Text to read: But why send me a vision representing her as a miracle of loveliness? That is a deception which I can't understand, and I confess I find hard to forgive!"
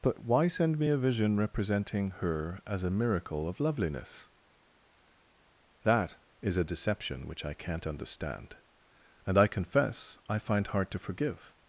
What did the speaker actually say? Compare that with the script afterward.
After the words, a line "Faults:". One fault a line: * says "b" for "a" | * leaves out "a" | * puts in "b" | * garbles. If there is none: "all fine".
But why send me a vision representing her as a miracle of loveliness? That is a deception which I can't understand, and I confess I find hard to forgive!"
Faults:
all fine